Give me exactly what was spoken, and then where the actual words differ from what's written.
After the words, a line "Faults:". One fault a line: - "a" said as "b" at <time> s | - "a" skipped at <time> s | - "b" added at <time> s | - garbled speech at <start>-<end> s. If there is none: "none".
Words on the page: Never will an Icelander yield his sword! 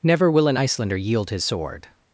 Never will an Icelander yield his sword!
Faults:
none